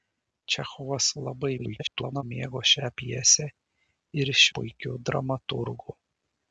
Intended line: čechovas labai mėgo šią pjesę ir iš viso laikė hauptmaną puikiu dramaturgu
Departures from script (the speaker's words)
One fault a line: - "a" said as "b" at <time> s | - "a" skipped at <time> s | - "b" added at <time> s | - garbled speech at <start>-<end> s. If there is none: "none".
- garbled speech at 1.6-2.2 s
- "viso laikė hauptmaną" skipped at 4.4 s